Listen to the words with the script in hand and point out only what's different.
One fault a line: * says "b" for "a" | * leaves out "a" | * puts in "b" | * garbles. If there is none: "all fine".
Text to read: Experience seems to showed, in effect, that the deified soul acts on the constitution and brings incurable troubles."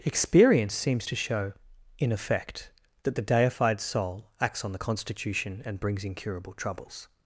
* says "show" for "showed"